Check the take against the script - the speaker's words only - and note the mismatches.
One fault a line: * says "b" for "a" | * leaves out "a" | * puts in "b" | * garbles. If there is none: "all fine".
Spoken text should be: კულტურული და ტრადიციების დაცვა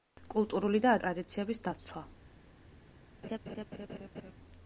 all fine